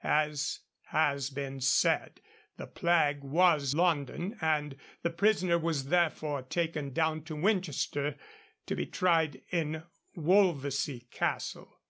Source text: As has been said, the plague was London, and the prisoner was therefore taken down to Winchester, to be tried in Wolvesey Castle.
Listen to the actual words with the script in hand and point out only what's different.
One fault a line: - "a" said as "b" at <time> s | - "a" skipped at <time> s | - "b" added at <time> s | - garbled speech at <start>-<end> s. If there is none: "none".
none